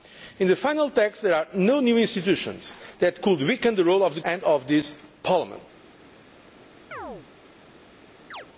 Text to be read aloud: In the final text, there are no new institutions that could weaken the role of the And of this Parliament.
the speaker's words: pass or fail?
pass